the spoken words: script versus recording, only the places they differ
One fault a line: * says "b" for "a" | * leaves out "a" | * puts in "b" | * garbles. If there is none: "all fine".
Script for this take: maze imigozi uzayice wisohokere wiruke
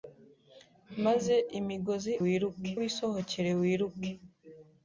* says "wiruke" for "uzayice"